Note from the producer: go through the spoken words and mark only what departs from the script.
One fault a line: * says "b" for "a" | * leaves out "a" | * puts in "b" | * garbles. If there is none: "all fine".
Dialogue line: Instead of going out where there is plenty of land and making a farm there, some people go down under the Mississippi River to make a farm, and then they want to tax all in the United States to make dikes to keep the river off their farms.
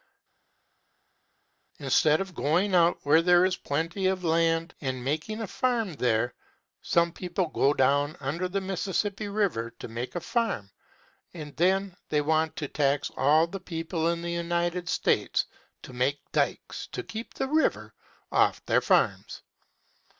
* puts in "the people"